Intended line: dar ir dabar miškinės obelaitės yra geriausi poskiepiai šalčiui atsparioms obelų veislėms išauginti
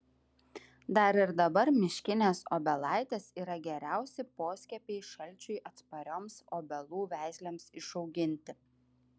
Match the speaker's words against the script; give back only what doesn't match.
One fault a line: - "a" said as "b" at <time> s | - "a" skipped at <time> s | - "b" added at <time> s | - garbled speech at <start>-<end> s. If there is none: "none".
none